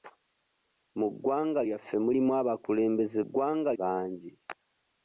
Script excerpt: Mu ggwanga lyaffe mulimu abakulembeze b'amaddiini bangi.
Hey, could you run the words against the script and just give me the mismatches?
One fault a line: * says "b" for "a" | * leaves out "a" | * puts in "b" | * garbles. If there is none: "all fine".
* says "ggwanga" for "b'amaddiini"